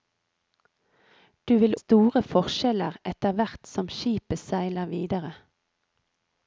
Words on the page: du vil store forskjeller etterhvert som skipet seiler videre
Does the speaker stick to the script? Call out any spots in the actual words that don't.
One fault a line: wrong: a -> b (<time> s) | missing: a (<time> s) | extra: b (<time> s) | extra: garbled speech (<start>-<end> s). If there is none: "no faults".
no faults